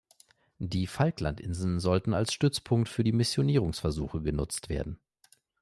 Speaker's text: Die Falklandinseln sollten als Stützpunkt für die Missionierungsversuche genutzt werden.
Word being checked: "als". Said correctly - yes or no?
yes